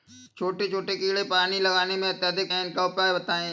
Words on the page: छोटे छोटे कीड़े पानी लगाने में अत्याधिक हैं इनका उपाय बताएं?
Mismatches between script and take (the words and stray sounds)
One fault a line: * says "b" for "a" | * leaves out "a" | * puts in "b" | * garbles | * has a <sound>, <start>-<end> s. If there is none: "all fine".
all fine